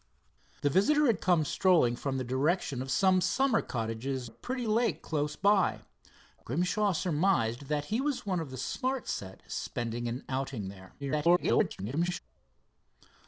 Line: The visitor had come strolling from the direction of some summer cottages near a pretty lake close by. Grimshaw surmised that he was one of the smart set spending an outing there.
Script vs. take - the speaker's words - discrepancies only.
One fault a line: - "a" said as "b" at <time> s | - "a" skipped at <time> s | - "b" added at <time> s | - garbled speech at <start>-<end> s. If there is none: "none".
- "near" skipped at 4.3 s
- garbled speech at 11.0-12.2 s